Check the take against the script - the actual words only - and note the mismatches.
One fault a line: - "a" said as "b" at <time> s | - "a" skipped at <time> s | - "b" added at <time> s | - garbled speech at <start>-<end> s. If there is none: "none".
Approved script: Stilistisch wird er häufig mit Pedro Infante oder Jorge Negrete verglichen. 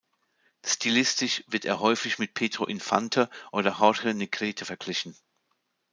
none